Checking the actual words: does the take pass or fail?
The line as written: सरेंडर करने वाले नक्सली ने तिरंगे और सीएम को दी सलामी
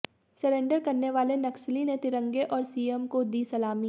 pass